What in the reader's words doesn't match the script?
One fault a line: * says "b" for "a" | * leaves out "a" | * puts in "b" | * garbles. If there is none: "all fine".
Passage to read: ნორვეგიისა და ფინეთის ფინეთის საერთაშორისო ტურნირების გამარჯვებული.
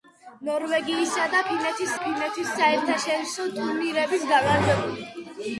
all fine